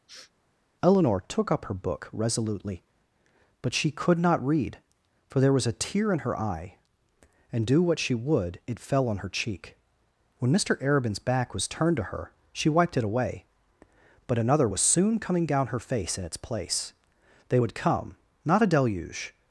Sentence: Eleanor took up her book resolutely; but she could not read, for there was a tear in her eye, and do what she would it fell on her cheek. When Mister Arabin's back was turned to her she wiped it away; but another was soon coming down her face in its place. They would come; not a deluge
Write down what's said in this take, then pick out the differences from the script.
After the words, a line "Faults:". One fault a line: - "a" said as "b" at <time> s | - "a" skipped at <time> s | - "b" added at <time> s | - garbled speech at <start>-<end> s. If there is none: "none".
Eleanor took up her book resolutely; but she could not read, for there was a tear in her eye, and do what she would it fell on her cheek. When Mister Arabin's back was turned to her she wiped it away; but another was soon coming down her face in its place. They would come; not a deluge
Faults:
none